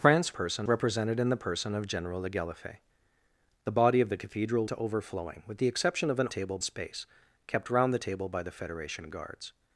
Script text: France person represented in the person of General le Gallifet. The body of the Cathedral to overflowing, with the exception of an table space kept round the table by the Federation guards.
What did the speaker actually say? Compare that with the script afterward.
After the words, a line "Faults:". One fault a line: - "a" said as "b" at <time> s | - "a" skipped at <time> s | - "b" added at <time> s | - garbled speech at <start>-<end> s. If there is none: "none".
France person represented in the person of General le Gallifet. The body of the Cathedral to overflowing, with the exception of an table space kept round the table by the Federation guards.
Faults:
none